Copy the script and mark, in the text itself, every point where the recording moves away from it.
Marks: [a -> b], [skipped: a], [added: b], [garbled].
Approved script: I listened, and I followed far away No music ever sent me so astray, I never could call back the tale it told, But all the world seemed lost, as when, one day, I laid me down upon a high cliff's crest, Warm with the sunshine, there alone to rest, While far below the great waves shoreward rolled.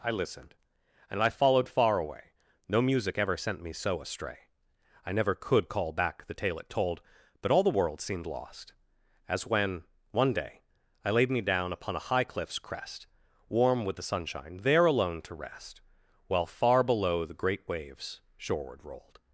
I listened, and I followed far away No music ever sent me so astray, I never could call back the tale it told, But all the world seemed lost, as when, one day, I laid me down upon a high cliff's crest, Warm with the sunshine, there alone to rest, While far below the great waves shoreward rolled.